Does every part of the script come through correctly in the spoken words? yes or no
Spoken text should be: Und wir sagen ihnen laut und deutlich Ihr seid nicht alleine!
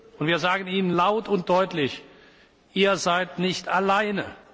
yes